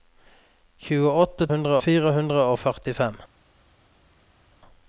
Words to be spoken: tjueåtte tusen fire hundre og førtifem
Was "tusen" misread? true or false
true